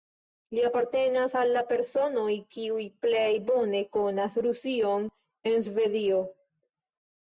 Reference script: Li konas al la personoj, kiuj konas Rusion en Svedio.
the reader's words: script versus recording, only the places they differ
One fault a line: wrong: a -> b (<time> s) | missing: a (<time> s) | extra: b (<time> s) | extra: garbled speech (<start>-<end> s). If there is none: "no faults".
wrong: konas -> apartenas (0.7 s)
extra: plej bone (3.1 s)